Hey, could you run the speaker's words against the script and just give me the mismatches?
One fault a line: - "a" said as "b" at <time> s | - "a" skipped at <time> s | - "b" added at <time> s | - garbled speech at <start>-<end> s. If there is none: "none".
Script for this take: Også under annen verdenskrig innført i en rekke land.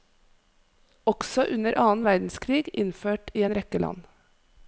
none